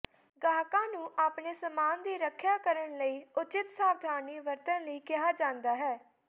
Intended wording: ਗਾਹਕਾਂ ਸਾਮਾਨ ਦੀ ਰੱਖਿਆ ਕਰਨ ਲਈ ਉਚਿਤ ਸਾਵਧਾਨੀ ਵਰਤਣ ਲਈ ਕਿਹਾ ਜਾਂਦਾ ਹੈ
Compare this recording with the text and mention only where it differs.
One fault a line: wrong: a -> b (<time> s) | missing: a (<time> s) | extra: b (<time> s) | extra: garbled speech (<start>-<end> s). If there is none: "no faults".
extra: ਨੂੰ ਆਪਣੇ (0.9 s)